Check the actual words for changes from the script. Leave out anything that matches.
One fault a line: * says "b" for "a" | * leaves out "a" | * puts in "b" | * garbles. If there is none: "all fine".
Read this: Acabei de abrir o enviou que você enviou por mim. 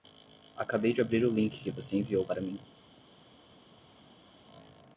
* says "link" for "enviou"
* says "para" for "por"